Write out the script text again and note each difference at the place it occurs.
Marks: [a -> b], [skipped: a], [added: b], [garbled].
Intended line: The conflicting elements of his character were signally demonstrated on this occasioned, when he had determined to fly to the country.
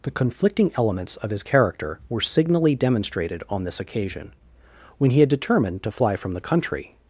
The conflicting elements of his character were signally demonstrated on this [occasioned, -> occasion] when he had determined to fly [to -> from] the country.